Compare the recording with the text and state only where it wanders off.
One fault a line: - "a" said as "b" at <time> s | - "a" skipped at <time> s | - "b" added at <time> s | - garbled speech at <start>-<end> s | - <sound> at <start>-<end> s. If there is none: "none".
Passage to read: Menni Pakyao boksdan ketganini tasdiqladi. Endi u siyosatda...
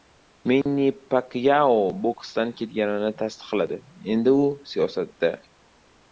- dropout at 0.6-0.7 s